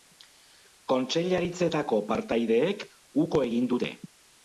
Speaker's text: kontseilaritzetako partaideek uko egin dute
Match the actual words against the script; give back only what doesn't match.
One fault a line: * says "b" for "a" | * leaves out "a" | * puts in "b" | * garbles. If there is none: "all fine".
all fine